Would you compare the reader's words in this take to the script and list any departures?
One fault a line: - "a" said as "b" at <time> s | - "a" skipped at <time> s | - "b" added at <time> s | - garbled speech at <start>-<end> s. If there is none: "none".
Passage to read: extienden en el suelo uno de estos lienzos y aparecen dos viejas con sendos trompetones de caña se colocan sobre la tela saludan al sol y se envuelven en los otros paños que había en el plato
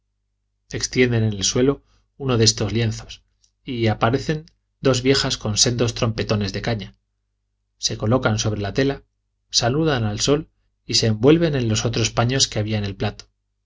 none